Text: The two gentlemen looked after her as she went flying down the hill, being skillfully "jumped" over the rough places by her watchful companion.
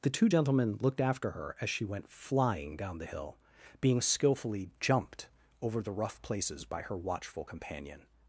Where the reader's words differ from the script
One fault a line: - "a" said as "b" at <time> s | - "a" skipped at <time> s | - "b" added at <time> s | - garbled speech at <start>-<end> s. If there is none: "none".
none